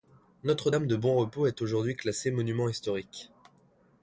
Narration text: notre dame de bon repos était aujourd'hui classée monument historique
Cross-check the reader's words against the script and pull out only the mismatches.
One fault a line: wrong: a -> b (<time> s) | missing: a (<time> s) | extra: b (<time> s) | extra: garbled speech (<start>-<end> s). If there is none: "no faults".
wrong: était -> est (1.5 s)